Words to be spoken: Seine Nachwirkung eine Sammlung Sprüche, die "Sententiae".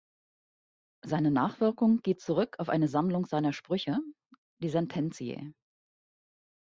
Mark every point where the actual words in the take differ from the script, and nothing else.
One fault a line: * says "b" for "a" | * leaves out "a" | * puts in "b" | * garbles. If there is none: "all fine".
* puts in "geht zurück auf"
* puts in "seiner"